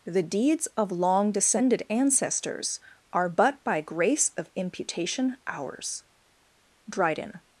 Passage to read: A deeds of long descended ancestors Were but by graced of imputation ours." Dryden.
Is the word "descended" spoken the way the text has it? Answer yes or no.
yes